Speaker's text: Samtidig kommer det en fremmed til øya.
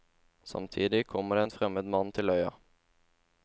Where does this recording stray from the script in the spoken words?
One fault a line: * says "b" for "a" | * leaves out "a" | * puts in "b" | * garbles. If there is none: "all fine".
* puts in "mann"